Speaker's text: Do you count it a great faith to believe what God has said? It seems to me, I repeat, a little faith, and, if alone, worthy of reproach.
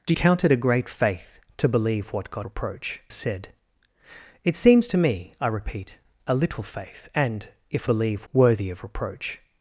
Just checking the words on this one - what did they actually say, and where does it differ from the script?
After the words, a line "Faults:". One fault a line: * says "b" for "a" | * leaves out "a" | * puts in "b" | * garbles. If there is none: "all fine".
Do count it a great faith to believe what God reproach said? It seems to me, I repeat, a little faith, and, if believe, worthy of reproach.
Faults:
* leaves out "you"
* says "reproach" for "has"
* says "believe" for "alone"